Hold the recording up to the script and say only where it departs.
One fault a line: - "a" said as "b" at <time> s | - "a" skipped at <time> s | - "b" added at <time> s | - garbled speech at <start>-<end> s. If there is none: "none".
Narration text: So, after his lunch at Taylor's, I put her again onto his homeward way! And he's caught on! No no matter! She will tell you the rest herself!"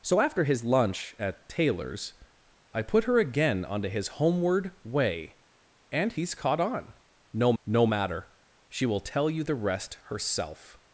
none